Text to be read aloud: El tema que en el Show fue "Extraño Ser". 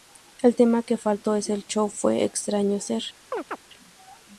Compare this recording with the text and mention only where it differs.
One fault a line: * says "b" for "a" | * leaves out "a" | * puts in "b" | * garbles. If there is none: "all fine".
* puts in "faltó"